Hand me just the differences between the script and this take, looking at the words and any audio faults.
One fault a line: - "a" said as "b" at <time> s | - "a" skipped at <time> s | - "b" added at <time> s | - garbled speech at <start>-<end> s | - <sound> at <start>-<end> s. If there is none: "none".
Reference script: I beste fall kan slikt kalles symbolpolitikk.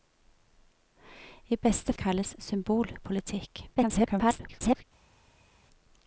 - "fall kan slikt" skipped at 1.9 s
- garbled speech at 3.7-4.8 s